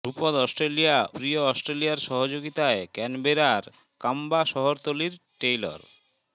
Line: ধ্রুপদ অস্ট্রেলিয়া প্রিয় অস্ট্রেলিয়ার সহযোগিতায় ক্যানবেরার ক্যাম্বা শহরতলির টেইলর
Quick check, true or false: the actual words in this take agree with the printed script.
true